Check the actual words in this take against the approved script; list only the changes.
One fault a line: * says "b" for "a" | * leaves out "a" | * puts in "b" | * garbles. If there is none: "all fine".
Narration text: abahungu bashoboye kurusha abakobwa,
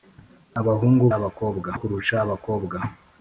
* says "abakobwa" for "bashoboye"